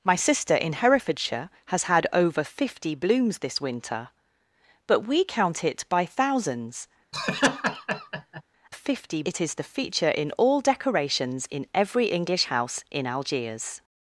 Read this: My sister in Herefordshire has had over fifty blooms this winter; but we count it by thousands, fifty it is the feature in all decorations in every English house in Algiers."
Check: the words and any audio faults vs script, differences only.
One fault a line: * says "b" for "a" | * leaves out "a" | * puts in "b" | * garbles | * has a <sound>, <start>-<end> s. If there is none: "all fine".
* has a laugh, 7.1-8.4 s